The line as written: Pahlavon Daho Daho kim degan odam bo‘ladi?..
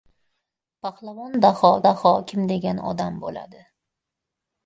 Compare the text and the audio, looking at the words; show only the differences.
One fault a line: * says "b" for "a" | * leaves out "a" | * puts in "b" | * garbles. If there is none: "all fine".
all fine